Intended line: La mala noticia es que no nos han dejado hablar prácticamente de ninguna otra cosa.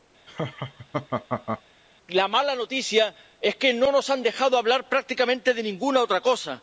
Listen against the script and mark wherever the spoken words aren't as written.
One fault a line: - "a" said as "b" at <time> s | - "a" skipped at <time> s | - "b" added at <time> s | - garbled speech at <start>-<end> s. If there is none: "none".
none